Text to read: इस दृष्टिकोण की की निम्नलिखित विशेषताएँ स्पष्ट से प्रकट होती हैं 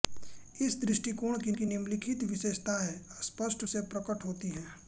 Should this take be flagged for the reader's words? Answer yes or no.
no